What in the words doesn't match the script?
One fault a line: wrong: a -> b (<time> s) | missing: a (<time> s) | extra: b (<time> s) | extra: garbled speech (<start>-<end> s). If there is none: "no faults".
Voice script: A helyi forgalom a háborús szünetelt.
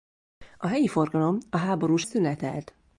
no faults